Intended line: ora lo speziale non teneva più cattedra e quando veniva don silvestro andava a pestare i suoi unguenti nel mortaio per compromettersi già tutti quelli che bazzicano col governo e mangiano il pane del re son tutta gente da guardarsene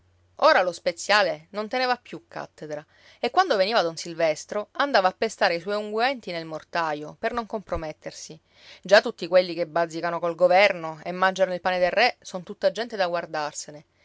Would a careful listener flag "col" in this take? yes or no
no